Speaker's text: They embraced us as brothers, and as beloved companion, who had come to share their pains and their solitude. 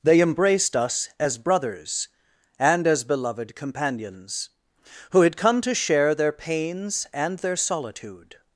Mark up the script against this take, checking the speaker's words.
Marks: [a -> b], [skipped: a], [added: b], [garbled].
They embraced us as brothers, and as beloved [companion, -> companions] who had come to share their pains and their solitude.